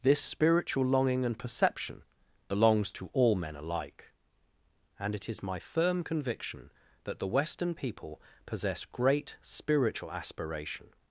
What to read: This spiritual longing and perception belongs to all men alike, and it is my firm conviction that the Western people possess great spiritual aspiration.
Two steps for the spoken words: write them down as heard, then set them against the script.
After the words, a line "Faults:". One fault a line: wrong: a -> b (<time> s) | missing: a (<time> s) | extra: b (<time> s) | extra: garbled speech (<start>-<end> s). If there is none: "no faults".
This spiritual longing and perception belongs to all men alike, and it is my firm conviction that the Western people possess great spiritual aspiration.
Faults:
no faults